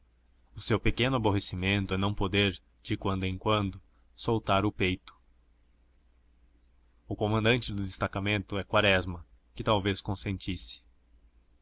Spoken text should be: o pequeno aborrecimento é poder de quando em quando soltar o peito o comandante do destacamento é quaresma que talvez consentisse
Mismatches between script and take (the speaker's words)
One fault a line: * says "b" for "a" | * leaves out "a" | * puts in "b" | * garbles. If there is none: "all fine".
* puts in "seu"
* puts in "não"